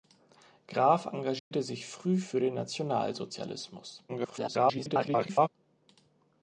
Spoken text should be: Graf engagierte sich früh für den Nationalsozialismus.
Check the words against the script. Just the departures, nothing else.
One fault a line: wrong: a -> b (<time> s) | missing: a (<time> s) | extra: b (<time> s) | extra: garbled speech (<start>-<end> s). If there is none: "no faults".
extra: garbled speech (4.1-5.5 s)